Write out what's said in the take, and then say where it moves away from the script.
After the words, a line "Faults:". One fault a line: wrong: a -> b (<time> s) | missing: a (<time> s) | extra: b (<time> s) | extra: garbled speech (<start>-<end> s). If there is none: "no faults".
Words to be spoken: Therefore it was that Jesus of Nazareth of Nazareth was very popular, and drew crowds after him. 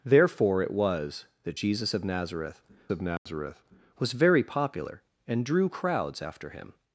Therefore it was that Jesus of Nazareth of Nazareth was very popular, and drew crowds after him.
Faults:
no faults